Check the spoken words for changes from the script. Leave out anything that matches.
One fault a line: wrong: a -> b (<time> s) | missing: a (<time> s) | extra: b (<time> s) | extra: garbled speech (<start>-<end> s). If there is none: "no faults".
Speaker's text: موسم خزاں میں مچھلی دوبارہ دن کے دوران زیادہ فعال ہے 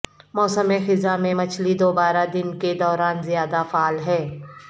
no faults